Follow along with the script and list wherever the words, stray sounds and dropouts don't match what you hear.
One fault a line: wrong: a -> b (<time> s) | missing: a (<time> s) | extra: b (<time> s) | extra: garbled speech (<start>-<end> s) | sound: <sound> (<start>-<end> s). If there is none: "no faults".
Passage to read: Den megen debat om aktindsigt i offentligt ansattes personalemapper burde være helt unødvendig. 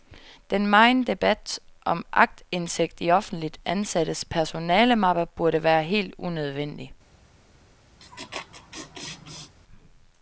sound: laugh (8.0-9.5 s)